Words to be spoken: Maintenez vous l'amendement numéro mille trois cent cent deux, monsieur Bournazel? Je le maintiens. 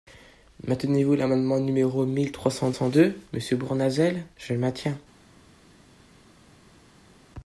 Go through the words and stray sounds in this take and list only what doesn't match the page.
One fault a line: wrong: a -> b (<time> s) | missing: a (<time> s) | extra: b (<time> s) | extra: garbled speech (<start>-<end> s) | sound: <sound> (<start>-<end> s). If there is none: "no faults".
no faults